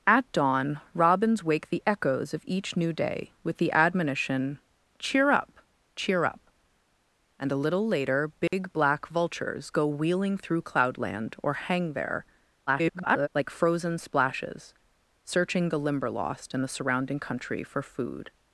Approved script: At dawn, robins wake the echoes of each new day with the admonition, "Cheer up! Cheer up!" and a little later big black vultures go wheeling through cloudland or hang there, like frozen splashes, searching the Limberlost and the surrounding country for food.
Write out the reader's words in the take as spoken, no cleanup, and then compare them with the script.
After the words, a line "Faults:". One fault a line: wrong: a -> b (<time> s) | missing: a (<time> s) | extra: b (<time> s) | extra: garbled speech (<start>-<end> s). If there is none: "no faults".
At dawn, robins wake the echoes of each new day with the admonition, "Cheer up! Cheer up!" and a little later big black vultures go wheeling through cloudland or hang there, [garbled] like frozen splashes, searching the Limberlost and the surrounding country for food.
Faults:
extra: garbled speech (12.7-13.3 s)